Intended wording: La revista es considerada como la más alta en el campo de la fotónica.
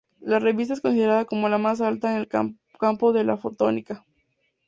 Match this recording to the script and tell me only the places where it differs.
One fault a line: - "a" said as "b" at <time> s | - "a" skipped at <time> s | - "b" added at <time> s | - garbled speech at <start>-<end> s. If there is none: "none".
none